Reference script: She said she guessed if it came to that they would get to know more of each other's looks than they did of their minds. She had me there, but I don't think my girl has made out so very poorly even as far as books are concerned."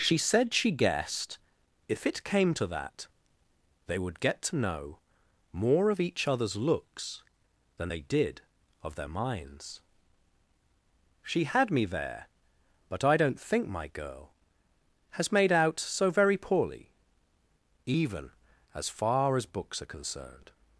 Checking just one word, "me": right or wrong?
right